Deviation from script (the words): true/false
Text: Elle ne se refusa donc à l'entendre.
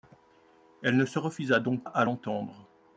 false